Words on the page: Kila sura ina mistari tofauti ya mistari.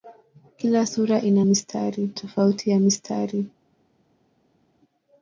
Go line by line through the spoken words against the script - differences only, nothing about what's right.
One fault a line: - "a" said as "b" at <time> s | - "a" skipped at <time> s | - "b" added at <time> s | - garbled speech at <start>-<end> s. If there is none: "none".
none